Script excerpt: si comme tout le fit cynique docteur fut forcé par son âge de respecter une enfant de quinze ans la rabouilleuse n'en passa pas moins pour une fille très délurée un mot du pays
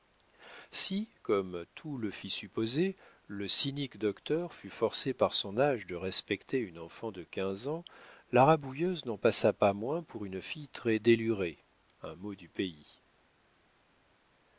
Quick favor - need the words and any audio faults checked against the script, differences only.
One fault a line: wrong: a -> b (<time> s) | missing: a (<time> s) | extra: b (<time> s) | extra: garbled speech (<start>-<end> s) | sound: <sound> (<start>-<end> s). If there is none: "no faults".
extra: supposer le (2.3 s)